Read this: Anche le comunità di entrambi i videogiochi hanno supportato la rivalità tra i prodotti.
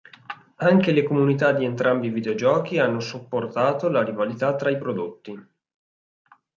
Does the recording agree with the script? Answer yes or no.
yes